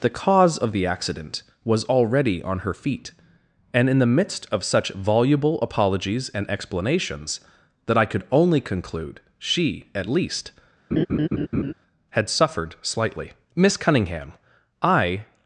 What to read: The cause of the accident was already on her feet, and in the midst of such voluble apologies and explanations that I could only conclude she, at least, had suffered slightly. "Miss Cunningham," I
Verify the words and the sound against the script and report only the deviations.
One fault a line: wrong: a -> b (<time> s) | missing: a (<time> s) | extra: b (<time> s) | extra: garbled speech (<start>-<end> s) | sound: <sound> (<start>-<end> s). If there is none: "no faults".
sound: laugh (10.9-11.7 s)